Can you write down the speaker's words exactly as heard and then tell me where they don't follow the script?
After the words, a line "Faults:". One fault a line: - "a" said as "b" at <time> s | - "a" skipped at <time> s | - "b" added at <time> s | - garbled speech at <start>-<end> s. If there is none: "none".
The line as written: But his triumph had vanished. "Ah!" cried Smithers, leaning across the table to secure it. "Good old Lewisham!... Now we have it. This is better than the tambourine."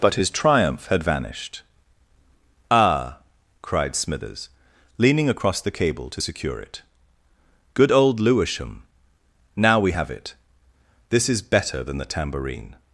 But his triumph had vanished. "Ah!" cried Smithers, leaning across the cable to secure it. "Good old Lewisham!... Now we have it. This is better than the tambourine."
Faults:
- "table" said as "cable" at 5.7 s